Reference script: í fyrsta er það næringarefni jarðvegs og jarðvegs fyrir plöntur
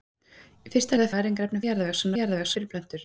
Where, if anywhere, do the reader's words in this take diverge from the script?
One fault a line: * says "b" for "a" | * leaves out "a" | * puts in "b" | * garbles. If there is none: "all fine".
all fine